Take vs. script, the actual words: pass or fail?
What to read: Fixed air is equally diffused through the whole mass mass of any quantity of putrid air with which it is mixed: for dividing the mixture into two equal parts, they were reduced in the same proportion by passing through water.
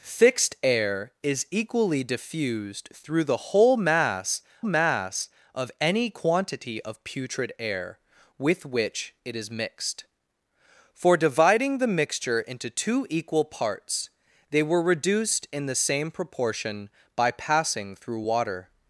pass